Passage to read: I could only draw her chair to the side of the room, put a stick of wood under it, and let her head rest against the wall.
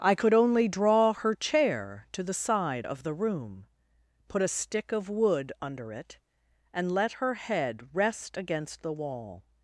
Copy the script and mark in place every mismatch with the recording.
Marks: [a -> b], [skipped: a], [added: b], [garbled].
I could only draw her chair to the side of the room, put a stick of wood under it, and let her head rest against the wall.